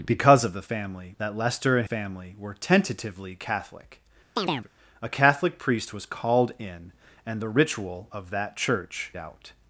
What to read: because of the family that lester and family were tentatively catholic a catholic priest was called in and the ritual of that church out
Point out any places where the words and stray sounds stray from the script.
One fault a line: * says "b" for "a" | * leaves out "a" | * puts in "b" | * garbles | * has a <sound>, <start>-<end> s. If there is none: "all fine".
* has a chirp, 4.4-4.7 s